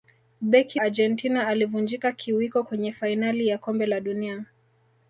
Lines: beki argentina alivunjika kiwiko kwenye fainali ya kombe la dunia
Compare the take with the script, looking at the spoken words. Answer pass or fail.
pass